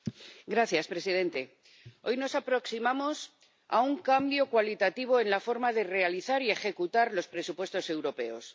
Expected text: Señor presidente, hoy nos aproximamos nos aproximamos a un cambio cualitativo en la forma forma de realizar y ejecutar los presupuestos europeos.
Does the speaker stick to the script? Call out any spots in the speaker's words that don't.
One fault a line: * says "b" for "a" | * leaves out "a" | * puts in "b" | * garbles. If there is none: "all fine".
* leaves out "nos aproximamos"
* leaves out "forma"